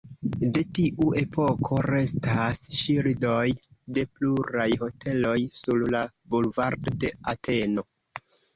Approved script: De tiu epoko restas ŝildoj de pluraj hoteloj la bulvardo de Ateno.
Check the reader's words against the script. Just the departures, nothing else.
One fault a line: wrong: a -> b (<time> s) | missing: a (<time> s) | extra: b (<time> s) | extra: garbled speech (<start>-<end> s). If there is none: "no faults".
extra: sur (5.6 s)